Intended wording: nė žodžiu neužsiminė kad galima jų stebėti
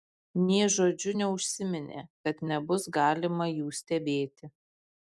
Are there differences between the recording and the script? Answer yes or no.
yes